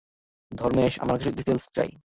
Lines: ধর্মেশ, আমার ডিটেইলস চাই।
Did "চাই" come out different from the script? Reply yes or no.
no